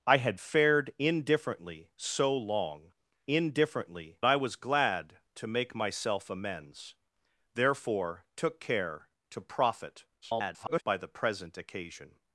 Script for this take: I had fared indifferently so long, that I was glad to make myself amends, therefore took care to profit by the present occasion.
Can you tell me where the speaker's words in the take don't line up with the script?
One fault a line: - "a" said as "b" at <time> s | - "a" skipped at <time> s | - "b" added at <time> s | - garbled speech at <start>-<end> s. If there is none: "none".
- "that" said as "indifferently" at 3.3 s
- garbled speech at 10.2-10.8 s